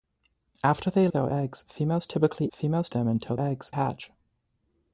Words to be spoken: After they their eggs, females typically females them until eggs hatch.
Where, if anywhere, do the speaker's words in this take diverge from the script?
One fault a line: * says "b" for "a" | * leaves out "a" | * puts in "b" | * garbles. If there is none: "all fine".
all fine